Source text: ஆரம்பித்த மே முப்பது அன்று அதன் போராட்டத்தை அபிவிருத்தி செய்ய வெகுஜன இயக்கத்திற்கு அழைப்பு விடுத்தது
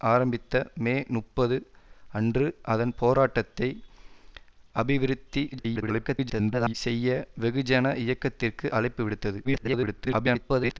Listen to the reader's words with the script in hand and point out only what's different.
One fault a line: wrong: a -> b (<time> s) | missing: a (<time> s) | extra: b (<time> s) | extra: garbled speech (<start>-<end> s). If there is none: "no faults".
extra: garbled speech (5.5-6.7 s)
extra: garbled speech (9.4-10.8 s)